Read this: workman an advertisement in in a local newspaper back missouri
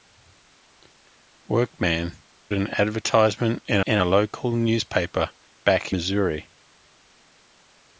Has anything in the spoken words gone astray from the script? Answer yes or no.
no